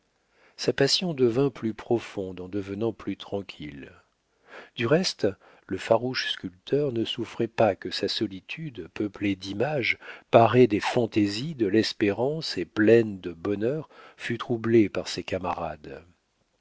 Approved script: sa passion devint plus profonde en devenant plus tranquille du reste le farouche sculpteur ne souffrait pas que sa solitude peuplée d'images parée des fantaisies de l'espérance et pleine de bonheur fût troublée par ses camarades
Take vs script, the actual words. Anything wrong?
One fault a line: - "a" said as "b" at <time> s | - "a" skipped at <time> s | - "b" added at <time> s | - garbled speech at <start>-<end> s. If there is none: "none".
none